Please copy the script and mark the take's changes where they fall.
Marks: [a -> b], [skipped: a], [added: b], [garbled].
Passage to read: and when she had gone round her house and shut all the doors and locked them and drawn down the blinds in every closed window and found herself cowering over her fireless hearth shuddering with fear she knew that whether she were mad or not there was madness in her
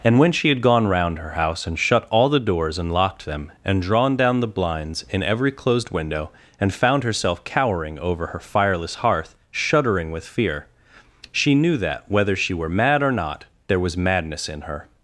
and when she had gone round her house and shut all the doors and locked them and drawn down the blinds in every closed window and found herself cowering over her fireless hearth shuddering with fear she knew that whether she were mad or not there was madness in her